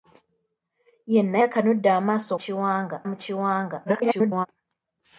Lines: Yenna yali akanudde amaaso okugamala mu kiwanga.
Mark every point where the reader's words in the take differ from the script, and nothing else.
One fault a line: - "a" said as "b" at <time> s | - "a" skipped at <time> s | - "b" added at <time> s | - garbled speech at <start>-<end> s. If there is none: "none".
- "yali" skipped at 1.4 s
- "okugamala" said as "kiwanga" at 2.4 s
- garbled speech at 3.9-4.5 s